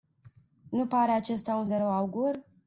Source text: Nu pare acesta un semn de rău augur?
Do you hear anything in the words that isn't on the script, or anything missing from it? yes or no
yes